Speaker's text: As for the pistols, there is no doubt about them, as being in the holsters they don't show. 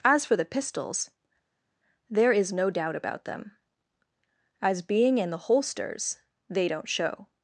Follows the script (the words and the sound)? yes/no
yes